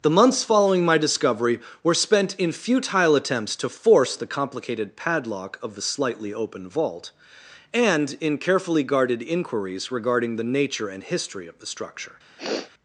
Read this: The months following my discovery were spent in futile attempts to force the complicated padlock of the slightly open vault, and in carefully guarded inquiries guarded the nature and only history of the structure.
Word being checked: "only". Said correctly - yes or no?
no